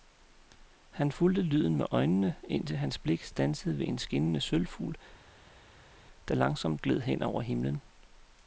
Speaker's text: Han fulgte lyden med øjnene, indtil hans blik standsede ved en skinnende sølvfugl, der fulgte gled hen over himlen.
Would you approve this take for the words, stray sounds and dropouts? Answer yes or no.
no